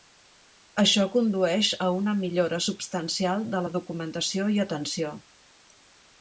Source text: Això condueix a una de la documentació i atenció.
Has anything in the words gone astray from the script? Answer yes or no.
yes